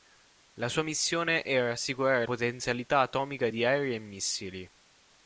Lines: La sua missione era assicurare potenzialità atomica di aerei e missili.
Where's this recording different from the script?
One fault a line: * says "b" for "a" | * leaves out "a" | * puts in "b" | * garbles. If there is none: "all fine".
all fine